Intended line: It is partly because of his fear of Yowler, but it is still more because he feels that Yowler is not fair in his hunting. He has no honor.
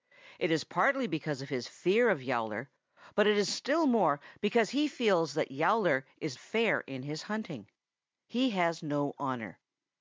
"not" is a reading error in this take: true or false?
true